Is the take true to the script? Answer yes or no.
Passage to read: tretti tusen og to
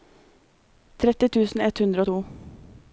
no